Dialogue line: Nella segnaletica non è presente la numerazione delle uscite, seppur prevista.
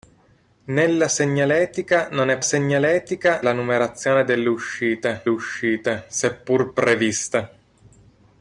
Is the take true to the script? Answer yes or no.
no